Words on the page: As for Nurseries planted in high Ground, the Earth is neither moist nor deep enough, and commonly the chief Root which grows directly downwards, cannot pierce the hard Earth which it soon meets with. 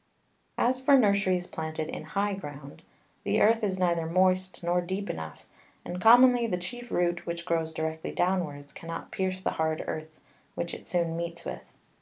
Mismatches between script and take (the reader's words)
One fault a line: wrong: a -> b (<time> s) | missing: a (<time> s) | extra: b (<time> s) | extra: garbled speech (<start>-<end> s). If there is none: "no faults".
no faults